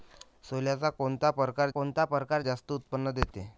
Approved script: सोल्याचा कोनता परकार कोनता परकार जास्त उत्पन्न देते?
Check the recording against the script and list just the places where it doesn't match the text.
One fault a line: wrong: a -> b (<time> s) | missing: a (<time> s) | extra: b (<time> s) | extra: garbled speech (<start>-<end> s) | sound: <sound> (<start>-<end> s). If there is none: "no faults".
no faults